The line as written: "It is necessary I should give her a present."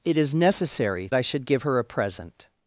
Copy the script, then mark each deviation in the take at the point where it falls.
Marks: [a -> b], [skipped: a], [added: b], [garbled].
"It is necessary I should give her a present."